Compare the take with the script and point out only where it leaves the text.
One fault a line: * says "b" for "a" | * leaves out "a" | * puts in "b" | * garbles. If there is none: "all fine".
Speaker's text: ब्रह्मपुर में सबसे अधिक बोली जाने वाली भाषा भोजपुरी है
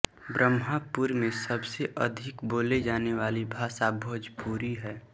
all fine